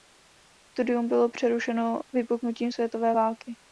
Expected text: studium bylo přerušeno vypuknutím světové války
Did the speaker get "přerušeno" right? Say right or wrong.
right